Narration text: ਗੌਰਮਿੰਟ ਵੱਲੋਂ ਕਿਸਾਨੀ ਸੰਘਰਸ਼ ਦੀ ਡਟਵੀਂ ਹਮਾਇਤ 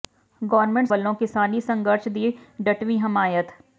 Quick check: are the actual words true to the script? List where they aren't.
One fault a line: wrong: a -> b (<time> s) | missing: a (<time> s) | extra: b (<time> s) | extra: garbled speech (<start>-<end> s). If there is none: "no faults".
no faults